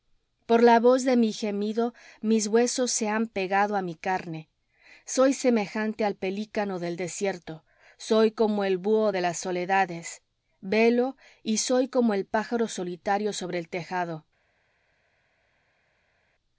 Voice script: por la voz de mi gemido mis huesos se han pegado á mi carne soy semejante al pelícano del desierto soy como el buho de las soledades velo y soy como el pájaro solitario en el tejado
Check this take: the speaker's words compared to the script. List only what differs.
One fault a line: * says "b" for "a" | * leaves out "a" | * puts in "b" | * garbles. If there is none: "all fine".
* says "sobre" for "en"